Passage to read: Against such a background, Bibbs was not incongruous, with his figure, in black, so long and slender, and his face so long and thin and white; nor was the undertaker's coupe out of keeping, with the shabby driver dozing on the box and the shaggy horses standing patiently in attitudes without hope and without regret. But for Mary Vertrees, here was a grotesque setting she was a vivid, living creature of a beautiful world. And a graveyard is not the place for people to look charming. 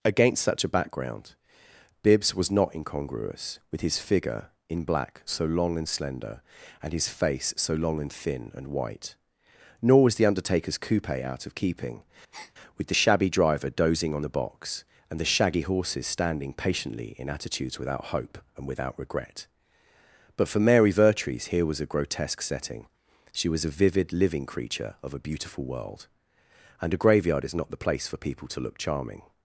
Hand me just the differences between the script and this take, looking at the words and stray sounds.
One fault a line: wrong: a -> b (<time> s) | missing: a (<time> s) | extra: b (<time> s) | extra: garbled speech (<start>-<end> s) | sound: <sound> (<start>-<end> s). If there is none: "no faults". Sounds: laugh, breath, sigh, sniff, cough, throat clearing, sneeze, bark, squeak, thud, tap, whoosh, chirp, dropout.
sound: breath (12.3-12.5 s)